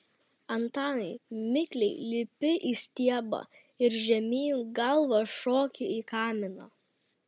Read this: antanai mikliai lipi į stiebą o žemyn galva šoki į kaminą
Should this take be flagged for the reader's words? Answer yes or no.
yes